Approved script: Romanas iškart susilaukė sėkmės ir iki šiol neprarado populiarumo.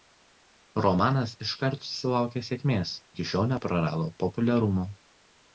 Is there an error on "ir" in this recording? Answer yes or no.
yes